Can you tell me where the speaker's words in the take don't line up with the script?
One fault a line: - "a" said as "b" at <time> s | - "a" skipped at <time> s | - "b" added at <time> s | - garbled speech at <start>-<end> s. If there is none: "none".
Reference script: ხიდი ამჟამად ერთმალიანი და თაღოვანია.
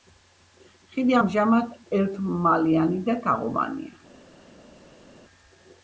none